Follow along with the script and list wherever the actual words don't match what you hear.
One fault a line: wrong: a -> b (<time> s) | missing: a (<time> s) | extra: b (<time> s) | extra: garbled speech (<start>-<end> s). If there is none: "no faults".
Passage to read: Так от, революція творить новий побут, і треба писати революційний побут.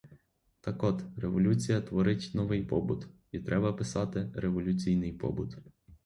no faults